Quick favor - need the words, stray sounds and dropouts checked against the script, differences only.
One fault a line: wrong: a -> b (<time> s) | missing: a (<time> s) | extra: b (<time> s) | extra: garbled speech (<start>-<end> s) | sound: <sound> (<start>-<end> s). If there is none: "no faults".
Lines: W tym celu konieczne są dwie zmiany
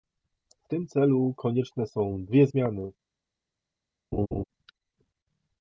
sound: laugh (4.1-4.4 s)